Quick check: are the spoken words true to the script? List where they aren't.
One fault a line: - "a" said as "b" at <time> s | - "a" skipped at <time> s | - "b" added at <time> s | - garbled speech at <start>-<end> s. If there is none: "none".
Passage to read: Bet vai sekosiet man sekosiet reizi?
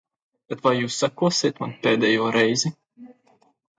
- "jūs" added at 0.8 s
- "sekosiet" said as "pēdējo" at 1.9 s